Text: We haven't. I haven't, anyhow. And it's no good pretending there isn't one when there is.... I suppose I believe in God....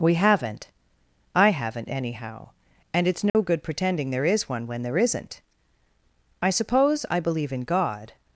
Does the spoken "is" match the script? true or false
false